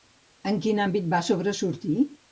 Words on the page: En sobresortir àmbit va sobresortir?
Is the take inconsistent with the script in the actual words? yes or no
yes